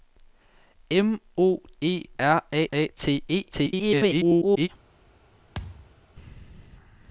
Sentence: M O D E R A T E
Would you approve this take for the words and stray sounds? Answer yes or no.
no